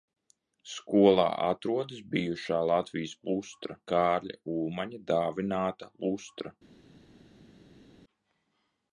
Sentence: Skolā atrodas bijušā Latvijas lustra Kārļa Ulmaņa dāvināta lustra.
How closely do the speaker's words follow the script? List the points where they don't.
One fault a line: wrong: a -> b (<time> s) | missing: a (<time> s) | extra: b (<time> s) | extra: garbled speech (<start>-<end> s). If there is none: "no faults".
no faults